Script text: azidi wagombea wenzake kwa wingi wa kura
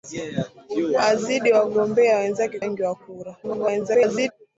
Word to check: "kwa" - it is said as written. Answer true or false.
false